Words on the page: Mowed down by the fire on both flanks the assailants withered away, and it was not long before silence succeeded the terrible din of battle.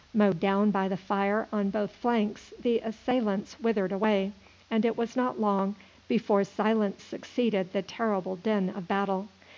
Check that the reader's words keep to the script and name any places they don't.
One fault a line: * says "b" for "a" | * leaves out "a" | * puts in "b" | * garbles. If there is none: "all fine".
all fine